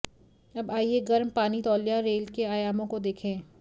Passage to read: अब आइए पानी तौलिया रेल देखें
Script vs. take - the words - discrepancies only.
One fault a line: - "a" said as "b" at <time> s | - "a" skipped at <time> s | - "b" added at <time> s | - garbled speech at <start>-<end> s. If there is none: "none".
- "गर्म" added at 1.0 s
- "के आयामों को" added at 2.3 s